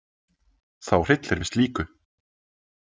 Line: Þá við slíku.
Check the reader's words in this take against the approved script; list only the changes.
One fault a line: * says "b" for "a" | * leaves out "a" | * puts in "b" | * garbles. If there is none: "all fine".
* puts in "hryllir"